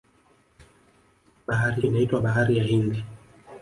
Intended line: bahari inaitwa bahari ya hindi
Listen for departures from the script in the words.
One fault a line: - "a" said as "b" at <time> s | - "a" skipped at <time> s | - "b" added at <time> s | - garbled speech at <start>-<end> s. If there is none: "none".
none